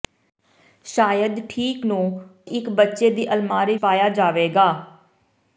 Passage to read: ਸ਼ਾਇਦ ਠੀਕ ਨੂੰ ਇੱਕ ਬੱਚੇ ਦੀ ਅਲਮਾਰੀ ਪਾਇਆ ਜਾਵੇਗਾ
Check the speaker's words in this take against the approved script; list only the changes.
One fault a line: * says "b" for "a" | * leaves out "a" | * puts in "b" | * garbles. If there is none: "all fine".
all fine